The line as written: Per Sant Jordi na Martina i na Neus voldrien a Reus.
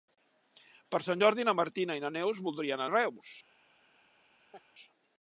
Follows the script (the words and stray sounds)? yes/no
no